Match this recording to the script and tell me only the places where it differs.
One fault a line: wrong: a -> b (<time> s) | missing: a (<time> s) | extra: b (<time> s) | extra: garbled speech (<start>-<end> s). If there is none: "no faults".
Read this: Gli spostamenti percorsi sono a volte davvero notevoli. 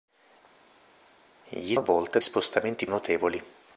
missing: spostamenti percorsi sono (1.7 s)
wrong: davvero -> spostamenti (2.2 s)